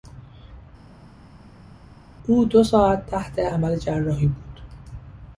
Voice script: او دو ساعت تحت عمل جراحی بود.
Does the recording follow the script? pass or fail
pass